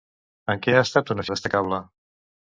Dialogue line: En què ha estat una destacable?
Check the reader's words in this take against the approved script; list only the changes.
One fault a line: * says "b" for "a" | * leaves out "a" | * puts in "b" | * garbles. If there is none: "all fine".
all fine